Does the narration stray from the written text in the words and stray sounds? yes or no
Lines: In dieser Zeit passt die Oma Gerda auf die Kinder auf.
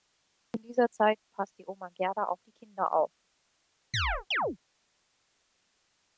yes